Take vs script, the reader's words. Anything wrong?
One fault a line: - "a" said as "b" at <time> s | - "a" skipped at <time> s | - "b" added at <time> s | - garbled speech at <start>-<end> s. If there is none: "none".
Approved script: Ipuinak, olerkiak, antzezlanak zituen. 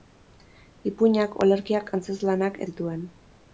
none